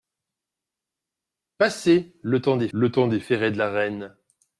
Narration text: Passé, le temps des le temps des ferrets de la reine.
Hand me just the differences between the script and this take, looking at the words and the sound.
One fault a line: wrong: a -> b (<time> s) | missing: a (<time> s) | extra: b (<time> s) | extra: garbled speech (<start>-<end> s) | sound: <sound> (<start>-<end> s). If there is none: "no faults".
no faults